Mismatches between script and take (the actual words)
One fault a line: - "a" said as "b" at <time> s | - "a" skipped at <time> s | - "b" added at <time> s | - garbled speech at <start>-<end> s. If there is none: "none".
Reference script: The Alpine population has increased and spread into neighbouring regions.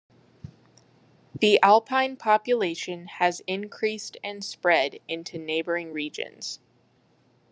none